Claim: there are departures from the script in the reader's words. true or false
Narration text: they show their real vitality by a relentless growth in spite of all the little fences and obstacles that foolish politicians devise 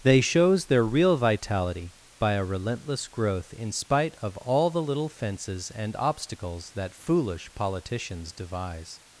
true